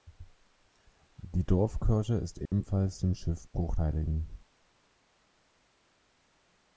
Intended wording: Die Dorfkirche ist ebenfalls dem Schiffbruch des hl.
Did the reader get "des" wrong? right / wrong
wrong